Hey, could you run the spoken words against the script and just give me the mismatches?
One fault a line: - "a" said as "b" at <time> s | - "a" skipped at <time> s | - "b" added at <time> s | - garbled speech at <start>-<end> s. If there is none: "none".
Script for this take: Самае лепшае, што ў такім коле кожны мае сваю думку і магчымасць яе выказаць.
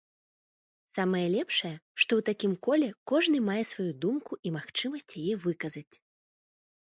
none